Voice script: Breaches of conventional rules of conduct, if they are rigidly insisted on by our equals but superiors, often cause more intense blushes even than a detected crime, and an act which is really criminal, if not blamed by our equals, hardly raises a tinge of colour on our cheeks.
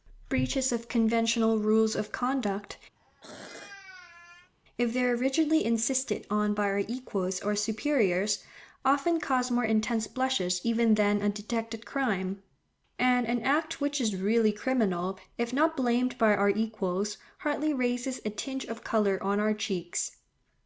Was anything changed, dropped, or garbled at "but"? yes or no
yes